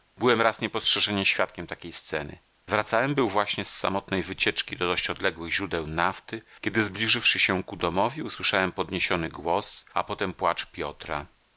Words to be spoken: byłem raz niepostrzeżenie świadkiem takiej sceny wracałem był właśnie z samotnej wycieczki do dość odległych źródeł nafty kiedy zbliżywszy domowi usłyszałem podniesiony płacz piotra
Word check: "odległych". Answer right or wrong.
right